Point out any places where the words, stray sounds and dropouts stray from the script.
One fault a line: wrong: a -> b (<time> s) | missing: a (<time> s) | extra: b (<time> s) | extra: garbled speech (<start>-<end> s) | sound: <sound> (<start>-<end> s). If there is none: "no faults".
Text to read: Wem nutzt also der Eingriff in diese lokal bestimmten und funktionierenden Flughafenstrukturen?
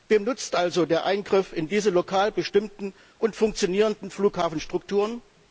no faults